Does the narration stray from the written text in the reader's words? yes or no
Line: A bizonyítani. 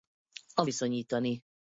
no